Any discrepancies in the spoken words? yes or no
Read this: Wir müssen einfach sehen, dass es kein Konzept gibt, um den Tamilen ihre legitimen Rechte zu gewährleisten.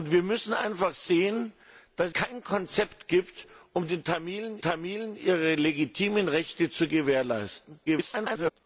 yes